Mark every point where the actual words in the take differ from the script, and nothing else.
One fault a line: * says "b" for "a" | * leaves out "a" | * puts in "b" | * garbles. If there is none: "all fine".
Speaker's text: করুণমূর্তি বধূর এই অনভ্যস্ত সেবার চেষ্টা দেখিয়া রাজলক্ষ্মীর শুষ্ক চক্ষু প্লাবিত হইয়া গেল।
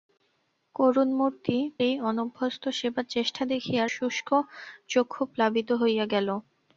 * leaves out "বধূর"
* leaves out "রাজলক্ষ্মীর"